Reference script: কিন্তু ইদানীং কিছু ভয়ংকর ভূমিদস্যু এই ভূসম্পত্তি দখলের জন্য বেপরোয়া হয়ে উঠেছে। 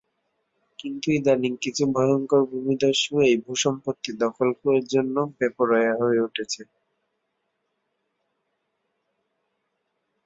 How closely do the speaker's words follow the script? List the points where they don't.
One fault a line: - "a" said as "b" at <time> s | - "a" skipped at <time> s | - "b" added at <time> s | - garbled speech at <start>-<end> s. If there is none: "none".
none